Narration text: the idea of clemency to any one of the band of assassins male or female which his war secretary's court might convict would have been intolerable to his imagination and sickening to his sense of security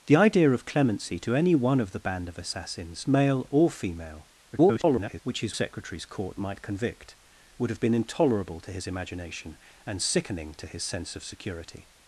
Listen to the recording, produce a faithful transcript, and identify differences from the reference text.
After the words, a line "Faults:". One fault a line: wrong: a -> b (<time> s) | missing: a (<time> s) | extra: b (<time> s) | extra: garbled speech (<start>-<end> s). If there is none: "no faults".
the idea of clemency to any one of the band of assassins male or female [garbled] which his secretary's court might convict would have been intolerable to his imagination and sickening to his sense of security
Faults:
extra: garbled speech (4.5-5.2 s)
missing: war (5.6 s)